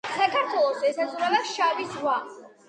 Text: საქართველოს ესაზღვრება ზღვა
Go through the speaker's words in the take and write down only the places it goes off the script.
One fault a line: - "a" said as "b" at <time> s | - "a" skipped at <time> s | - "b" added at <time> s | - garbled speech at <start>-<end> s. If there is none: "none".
- "შავი" added at 1.5 s